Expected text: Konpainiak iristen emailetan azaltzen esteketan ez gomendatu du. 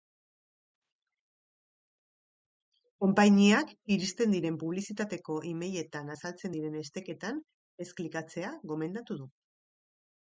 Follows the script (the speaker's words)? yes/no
no